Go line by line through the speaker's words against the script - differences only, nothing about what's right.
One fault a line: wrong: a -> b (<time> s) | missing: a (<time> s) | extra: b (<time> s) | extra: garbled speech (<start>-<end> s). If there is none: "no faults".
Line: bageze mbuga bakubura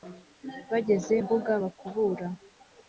no faults